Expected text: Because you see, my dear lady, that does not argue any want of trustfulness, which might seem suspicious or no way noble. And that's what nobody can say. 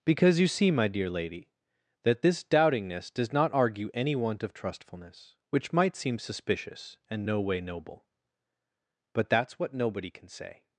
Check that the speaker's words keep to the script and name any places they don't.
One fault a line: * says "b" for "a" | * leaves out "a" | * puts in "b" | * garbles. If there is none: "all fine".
* puts in "this doubtingness"
* says "and" for "or"
* says "But" for "And"